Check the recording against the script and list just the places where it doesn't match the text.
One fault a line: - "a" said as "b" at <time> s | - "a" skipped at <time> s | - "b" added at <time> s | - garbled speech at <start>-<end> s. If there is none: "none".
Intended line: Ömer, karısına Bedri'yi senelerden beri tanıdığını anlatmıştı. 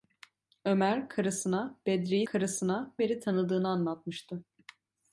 - "senelerden" said as "karısına" at 2.3 s